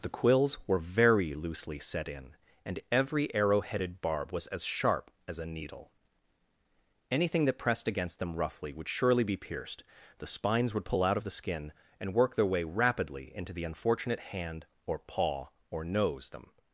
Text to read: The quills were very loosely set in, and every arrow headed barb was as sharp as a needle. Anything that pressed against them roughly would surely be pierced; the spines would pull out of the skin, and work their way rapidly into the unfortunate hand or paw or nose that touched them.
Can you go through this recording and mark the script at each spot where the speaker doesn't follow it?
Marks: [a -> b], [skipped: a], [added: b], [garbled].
The quills were very loosely set in, and every arrow headed barb was as sharp as a needle. Anything that pressed against them roughly would surely be pierced; the spines would pull out of the skin, and work their way rapidly into the unfortunate hand or paw or nose [skipped: that touched] them.